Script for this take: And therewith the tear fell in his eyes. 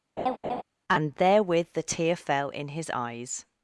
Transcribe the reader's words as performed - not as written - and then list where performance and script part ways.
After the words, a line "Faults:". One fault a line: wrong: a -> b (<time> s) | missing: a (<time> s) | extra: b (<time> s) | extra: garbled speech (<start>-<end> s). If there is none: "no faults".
And therewith the tear fell in his eyes.
Faults:
no faults